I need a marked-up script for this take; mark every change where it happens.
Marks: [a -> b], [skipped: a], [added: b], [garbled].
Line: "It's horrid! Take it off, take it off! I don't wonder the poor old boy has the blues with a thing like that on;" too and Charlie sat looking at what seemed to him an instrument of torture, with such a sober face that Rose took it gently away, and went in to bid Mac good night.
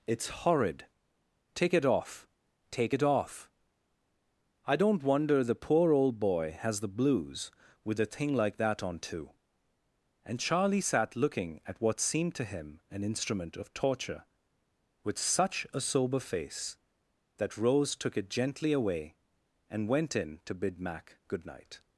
"It's horrid! Take it off, take it off! I don't wonder the poor old boy has the blues with a thing like that on;" too and Charlie sat looking at what seemed to him an instrument of torture, with such a sober face that Rose took it gently away, and went in to bid Mac good night.